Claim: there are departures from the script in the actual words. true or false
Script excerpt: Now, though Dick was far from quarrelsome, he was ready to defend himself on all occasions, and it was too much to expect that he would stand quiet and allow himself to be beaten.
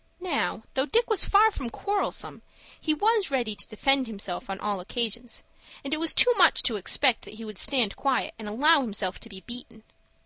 false